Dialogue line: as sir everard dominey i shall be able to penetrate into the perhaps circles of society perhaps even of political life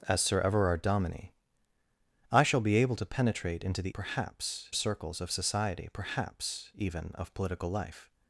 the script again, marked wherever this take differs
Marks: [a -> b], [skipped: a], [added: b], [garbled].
as sir everard dominey i shall be able to penetrate into the perhaps circles of society perhaps even of political life